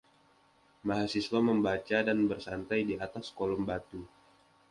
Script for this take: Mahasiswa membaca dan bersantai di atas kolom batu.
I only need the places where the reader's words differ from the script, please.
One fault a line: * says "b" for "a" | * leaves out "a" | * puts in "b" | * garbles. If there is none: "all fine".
all fine